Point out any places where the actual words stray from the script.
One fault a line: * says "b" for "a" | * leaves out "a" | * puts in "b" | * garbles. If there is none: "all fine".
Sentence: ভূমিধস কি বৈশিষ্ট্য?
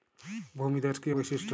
all fine